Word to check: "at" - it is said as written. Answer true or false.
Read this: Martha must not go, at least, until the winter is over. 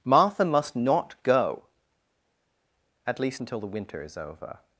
true